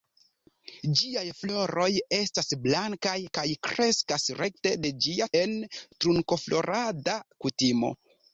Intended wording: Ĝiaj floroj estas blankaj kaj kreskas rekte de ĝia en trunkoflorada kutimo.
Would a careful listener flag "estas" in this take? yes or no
no